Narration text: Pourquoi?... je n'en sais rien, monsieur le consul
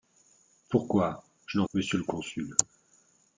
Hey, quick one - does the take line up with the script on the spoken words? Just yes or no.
no